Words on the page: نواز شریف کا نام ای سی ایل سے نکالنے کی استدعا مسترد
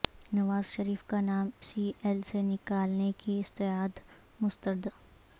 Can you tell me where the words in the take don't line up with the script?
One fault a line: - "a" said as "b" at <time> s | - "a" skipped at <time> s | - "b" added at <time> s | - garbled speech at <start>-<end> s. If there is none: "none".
- "ای" skipped at 1.5 s